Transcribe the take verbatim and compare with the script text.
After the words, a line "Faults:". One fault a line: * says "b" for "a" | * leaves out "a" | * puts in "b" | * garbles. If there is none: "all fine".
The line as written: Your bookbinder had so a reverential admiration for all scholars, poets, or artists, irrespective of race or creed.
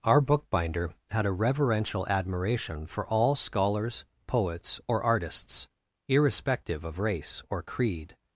Our bookbinder had a reverential admiration for all scholars, poets, or artists, irrespective of race or creed.
Faults:
* says "Our" for "Your"
* leaves out "so"